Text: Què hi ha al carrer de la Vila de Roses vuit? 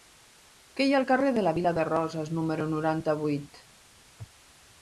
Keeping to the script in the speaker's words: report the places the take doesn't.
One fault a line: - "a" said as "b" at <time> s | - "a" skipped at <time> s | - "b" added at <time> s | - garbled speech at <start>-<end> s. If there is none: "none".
- "número noranta" added at 2.4 s